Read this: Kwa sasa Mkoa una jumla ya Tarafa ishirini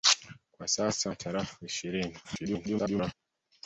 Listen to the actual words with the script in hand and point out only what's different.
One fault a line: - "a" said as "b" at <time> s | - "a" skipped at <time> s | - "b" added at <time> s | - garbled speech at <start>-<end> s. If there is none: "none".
- "Mkoa una jumla" skipped at 1.1 s
- garbled speech at 2.2-3.1 s